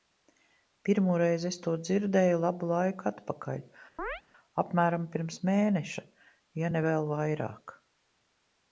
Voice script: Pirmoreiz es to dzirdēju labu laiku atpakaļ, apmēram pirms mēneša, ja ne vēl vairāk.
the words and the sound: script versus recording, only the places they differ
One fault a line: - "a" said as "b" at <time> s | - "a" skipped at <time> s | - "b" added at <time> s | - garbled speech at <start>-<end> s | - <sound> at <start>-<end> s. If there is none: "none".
- chirp at 4.0-4.2 s